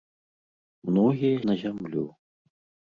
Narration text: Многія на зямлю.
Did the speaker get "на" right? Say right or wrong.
right